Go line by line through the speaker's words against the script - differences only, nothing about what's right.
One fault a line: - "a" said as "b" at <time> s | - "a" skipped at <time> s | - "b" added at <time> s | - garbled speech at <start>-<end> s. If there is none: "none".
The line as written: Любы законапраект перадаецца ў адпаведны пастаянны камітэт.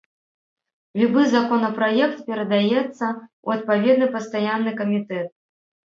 none